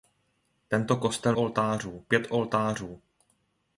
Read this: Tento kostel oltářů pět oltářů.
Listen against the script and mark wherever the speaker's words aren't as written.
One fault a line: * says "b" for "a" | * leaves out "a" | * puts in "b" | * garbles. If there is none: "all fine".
all fine